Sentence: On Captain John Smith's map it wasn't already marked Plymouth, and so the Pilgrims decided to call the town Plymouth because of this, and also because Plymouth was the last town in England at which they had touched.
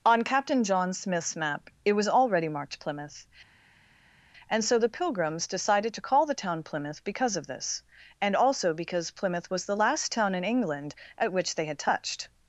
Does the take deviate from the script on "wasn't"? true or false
true